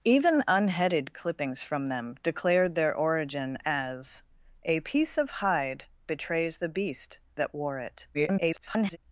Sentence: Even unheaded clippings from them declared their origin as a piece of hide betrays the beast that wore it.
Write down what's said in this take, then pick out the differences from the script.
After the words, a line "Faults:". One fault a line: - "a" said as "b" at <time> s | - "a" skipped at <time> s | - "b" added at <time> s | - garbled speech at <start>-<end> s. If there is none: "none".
Even unheaded clippings from them declared their origin as a piece of hide betrays the beast that wore it. [garbled]
Faults:
- garbled speech at 8.1-9.0 s